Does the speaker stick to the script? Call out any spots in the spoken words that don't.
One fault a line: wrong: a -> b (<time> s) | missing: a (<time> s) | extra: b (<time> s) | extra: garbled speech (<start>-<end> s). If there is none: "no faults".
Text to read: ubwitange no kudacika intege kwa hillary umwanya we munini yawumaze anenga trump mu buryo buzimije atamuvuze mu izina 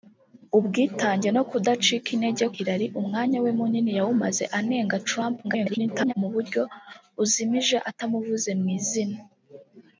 missing: kwa (2.5 s)
extra: garbled speech (5.4-6.1 s)